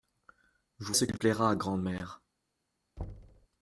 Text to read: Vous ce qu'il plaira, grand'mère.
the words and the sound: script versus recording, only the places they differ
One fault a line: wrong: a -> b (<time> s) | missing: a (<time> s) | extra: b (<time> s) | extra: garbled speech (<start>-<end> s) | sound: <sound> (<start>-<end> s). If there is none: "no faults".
sound: thud (3.0-3.5 s)